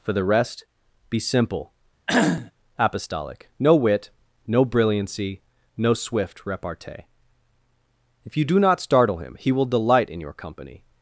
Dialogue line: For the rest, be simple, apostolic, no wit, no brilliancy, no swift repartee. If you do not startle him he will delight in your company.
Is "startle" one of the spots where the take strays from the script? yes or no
no